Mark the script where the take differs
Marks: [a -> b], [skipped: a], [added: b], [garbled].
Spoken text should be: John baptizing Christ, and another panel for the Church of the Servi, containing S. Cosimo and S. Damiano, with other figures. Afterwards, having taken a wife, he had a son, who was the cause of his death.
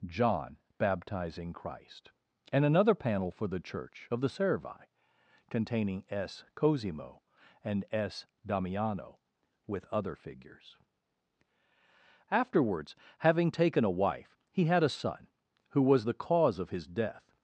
John baptizing Christ, and another panel for the Church of the Servi, containing S. Cosimo and S. Damiano, with other figures. Afterwards, having taken a wife, he had a son, who was the cause of his death.